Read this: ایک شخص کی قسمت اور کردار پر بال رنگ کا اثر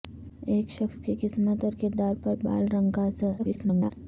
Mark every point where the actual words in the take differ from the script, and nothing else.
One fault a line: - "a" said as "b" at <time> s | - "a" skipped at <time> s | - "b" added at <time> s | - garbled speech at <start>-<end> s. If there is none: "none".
- garbled speech at 3.4-3.9 s